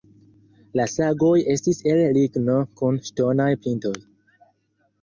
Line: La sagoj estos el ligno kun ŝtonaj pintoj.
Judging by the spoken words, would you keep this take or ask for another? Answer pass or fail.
fail